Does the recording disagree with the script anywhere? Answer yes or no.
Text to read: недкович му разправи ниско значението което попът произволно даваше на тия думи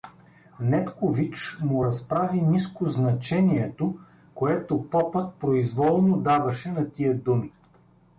no